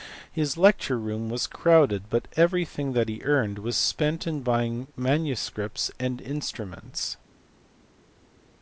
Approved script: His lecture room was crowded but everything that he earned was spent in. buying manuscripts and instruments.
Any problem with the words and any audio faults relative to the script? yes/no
no